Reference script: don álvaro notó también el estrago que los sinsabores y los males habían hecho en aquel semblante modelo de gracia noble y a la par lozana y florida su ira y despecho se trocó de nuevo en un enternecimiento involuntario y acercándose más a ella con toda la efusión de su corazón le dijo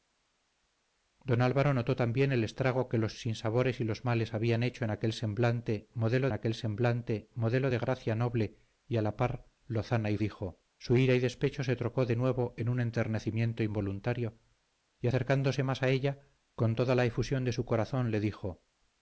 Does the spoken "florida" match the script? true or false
false